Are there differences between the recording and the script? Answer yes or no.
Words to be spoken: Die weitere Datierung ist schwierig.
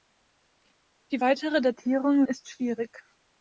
no